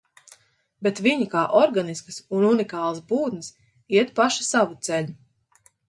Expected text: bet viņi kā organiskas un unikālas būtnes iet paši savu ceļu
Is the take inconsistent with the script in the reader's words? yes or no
no